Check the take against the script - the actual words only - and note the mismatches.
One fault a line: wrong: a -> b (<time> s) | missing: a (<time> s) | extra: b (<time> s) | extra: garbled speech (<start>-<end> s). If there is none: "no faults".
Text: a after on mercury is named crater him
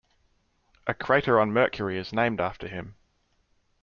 wrong: after -> crater (0.9 s)
wrong: crater -> after (2.4 s)